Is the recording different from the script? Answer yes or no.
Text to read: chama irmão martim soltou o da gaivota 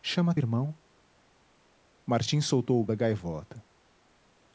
no